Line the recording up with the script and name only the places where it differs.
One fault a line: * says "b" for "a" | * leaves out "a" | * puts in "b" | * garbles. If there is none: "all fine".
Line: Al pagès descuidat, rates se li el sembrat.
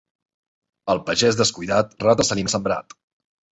all fine